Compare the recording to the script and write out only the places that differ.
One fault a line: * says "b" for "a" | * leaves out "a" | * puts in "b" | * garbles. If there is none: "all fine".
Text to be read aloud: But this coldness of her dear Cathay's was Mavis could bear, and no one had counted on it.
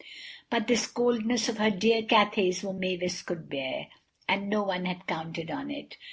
all fine